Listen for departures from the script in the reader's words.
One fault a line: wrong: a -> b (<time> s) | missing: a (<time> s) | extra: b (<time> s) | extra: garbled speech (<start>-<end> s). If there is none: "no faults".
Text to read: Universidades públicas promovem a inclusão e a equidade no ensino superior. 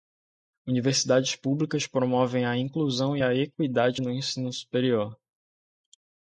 no faults